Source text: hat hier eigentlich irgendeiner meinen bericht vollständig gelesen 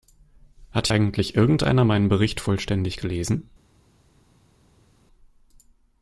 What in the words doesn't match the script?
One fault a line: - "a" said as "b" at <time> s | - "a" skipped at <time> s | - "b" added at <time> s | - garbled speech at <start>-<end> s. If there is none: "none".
- "hier" skipped at 0.9 s